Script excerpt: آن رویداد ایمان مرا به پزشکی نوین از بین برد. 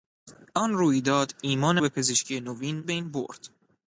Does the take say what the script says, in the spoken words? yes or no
no